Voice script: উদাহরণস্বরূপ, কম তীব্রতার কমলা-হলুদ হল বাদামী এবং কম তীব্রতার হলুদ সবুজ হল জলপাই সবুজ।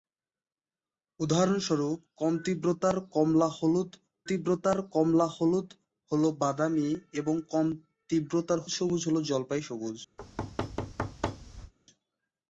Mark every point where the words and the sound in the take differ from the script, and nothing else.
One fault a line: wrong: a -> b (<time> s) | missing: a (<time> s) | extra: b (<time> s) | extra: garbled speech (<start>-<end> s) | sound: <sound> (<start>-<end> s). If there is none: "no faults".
extra: তীব্রতার কমলা-হলুদ (4.3 s)
missing: হলুদ (8.6 s)
sound: thud (10.2-11.7 s)